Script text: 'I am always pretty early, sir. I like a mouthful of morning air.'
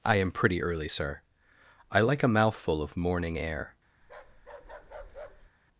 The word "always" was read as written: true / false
false